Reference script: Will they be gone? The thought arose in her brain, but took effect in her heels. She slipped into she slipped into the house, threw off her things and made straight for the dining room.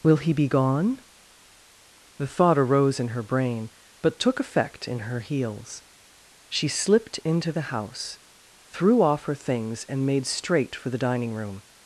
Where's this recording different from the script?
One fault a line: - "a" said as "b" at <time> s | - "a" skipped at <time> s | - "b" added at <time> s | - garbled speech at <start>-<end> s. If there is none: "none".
- "they" said as "he" at 0.2 s
- "she slipped into" skipped at 7.5 s